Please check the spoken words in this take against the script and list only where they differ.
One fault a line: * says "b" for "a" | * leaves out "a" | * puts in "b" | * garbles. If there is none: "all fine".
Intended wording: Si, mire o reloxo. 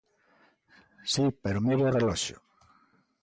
* puts in "pero"